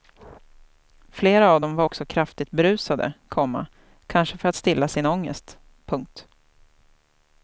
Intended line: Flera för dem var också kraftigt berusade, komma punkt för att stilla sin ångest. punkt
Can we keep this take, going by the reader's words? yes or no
no